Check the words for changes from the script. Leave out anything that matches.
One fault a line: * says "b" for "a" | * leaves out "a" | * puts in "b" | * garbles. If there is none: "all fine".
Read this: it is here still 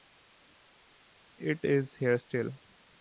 all fine